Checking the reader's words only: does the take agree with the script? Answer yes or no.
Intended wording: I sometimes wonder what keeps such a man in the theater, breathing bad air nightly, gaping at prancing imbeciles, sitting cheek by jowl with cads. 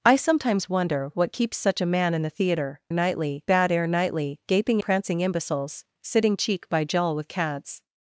no